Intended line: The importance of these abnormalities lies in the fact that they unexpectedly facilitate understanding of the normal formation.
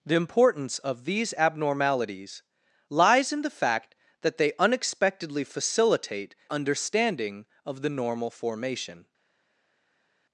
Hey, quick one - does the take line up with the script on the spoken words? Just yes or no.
yes